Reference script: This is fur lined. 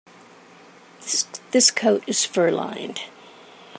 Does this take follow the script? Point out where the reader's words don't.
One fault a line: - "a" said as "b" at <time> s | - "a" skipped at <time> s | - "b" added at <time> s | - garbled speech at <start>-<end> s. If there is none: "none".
- "coat" added at 1.7 s